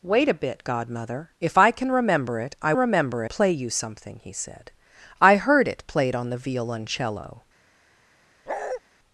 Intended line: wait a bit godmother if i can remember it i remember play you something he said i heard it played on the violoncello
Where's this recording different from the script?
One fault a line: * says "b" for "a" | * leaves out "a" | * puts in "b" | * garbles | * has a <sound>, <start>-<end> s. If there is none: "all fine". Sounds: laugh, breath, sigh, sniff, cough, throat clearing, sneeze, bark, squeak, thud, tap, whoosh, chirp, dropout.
* has a bark, 8.5-8.8 s